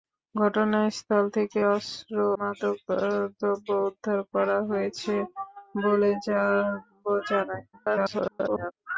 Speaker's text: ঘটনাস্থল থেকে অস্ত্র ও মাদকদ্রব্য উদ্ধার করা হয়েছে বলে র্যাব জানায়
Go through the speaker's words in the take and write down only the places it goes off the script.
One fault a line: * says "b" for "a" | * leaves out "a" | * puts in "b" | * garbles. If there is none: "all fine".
* leaves out "ও"
* garbles